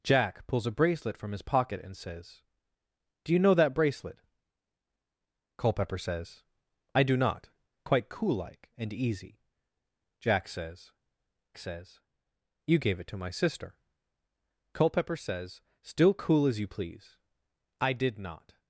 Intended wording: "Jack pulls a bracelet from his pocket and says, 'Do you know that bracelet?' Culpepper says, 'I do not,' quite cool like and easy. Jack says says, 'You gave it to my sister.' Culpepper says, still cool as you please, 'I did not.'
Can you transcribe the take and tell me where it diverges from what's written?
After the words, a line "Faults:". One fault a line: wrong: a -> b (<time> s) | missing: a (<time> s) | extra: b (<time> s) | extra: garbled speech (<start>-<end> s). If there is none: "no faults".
"Jack pulls a bracelet from his pocket and says, 'Do you know that bracelet?' Culpepper says, 'I do not,' quite cool like and easy. Jack says says, 'You gave it to my sister.' Culpepper says, still cool as you please, 'I did not.'
Faults:
no faults